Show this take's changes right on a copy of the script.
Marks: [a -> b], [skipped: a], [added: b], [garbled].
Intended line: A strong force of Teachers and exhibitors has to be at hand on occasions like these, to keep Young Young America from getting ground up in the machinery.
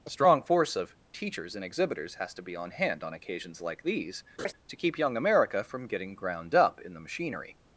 A strong force of Teachers and exhibitors has to be [at -> on] hand on occasions like these, to keep Young [skipped: Young] America from getting ground up in the machinery.